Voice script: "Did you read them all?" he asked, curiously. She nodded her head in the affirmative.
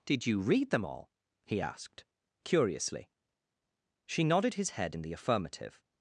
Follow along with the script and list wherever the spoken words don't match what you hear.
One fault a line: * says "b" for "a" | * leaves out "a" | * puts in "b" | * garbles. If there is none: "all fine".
* says "his" for "her"